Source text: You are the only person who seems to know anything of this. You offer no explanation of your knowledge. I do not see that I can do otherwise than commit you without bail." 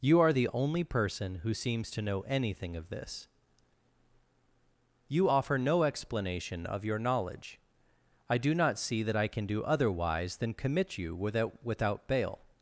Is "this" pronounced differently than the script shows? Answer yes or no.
no